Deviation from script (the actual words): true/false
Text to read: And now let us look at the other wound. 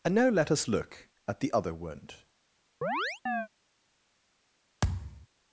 false